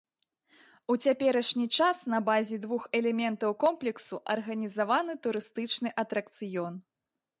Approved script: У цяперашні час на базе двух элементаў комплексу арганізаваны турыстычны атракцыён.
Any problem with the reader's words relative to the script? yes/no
no